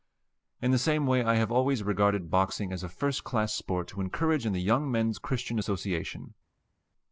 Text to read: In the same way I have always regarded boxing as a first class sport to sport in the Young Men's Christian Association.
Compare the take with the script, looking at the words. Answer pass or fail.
fail